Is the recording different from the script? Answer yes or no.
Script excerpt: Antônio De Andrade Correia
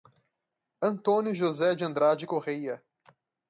yes